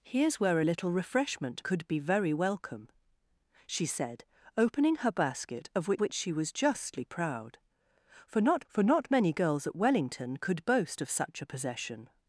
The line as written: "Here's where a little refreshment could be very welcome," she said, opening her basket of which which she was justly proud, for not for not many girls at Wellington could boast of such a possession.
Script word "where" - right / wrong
right